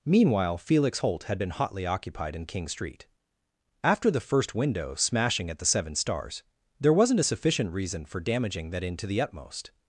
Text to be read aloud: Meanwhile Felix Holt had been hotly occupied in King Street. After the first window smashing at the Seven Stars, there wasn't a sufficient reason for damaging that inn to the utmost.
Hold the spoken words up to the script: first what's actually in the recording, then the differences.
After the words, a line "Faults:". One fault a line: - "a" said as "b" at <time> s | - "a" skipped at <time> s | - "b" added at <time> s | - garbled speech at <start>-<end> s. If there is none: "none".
Meanwhile Felix Holt had been hotly occupied in King Street. After the first window smashing at the Seven Stars, there wasn't a sufficient reason for damaging that inn to the utmost.
Faults:
none